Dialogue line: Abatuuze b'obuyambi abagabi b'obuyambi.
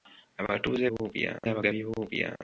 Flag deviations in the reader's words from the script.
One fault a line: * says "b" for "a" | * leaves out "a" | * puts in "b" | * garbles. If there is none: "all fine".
all fine